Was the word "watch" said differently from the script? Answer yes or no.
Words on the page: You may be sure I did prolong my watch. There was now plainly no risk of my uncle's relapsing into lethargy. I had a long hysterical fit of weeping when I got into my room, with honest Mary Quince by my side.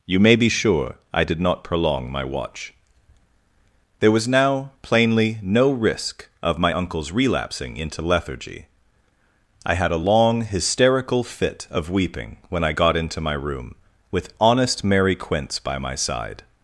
no